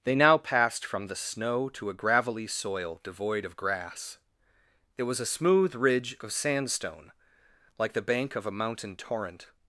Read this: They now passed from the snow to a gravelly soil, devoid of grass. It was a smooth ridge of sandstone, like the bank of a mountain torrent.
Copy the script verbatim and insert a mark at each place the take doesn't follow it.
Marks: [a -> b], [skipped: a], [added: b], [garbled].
They now passed from the snow to a gravelly soil, devoid of grass. It was a smooth ridge of sandstone, like the bank of a mountain torrent.